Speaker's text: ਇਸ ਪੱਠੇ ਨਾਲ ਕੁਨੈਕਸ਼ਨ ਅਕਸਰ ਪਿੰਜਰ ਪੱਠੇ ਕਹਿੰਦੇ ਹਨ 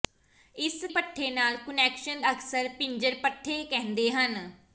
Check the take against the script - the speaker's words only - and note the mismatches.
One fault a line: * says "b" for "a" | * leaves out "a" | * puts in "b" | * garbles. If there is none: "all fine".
all fine